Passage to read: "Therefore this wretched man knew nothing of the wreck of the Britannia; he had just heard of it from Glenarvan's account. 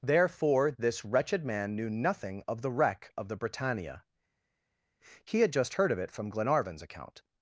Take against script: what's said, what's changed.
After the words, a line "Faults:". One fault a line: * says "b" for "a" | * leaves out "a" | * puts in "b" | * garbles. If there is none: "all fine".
"Therefore this wretched man knew nothing of the wreck of the Britannia; he had just heard of it from Glenarvan's account.
Faults:
all fine